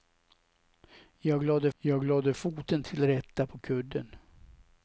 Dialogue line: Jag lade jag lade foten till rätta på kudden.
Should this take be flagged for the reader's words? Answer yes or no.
no